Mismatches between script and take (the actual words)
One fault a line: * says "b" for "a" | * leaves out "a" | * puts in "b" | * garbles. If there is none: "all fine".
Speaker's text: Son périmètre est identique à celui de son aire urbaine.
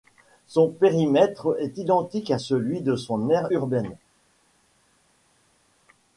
all fine